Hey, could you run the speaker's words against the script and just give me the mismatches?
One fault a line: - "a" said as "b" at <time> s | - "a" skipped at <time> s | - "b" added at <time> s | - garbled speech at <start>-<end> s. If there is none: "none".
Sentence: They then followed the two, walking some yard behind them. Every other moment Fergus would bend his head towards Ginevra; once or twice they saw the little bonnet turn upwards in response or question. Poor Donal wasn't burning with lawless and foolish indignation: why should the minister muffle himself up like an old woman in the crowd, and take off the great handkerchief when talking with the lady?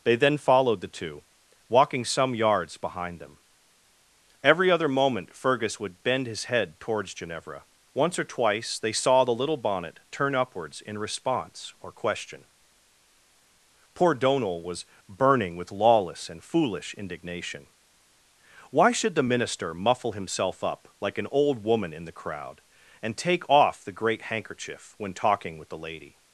- "yard" said as "yards" at 2.3 s
- "wasn't" said as "was" at 14.6 s